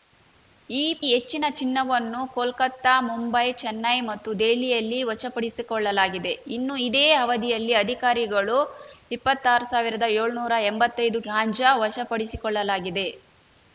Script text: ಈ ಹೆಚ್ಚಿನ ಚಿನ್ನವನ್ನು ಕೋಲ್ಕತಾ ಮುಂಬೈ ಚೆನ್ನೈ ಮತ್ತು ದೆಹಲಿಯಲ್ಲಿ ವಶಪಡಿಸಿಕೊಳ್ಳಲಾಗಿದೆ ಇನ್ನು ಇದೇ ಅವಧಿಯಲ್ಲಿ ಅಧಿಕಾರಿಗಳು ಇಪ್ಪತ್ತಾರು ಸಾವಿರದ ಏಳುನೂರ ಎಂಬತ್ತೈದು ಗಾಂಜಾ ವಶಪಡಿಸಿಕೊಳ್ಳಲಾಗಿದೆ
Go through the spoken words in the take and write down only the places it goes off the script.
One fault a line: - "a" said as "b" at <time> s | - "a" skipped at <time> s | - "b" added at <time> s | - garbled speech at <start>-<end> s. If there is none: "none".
none